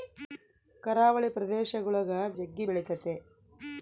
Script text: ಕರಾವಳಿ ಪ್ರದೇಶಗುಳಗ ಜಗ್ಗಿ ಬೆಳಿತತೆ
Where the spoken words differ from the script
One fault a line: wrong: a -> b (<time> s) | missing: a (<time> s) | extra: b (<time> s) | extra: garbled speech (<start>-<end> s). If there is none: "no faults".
no faults